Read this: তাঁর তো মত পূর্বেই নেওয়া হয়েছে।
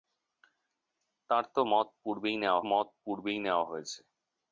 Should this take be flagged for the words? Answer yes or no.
yes